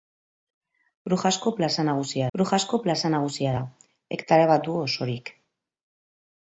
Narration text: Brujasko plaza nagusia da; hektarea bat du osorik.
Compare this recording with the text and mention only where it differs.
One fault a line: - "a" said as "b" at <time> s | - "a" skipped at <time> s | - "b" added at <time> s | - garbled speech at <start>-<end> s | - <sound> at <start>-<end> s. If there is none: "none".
- "brujasko plaza nagusia" added at 2.4 s